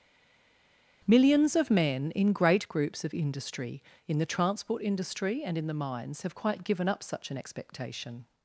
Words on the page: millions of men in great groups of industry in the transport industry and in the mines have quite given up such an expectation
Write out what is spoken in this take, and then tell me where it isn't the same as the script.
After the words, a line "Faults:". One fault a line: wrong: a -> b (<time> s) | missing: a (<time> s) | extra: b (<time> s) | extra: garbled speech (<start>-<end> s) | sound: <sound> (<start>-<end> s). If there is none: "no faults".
millions of men in great groups of industry in the transport industry and in the mines have quite given up such an expectation
Faults:
no faults